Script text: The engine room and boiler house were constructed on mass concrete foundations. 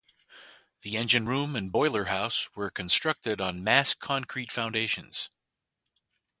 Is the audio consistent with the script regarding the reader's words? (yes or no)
yes